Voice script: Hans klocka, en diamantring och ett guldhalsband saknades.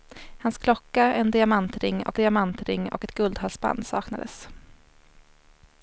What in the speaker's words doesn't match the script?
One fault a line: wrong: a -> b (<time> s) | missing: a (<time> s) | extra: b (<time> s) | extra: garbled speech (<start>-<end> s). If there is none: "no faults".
extra: diamantring och (2.1 s)